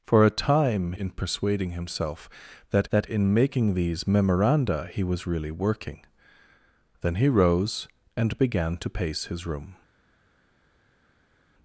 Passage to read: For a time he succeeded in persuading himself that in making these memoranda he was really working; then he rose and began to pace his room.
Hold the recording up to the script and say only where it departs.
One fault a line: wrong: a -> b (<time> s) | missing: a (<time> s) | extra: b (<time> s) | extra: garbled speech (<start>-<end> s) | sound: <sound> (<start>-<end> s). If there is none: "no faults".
missing: he succeeded (0.9 s)
extra: that (2.9 s)